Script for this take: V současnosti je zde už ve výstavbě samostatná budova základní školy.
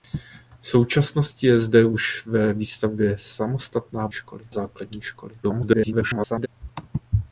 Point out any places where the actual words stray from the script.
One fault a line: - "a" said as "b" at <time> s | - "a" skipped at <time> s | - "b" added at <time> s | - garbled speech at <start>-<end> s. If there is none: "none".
- "budova" said as "školy" at 4.1 s
- garbled speech at 5.4-6.5 s